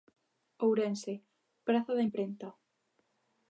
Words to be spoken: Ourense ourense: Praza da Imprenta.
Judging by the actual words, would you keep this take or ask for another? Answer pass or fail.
fail